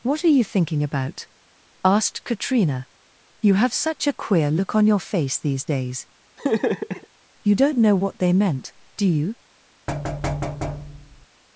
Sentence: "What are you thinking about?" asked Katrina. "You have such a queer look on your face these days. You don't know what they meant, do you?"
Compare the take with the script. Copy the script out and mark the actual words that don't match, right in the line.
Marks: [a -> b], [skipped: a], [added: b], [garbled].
"What are you thinking about?" asked Katrina. "You have such a queer look on your face these days. You don't know what they meant, do you?"